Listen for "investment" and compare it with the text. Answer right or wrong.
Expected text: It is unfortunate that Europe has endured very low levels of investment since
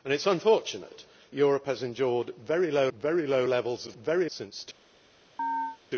wrong